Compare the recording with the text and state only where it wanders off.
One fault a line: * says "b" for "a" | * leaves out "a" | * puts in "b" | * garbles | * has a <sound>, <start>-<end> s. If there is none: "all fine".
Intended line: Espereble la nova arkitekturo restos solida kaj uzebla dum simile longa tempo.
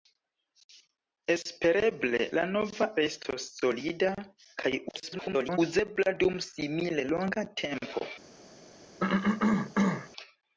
* leaves out "arkitekturo"
* garbles
* has a cough, 9.0-10.1 s